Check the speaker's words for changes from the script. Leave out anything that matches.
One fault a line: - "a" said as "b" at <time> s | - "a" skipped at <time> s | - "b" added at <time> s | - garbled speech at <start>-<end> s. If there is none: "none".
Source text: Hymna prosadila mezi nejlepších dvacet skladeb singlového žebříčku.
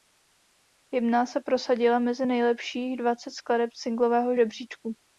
- "se" added at 1.2 s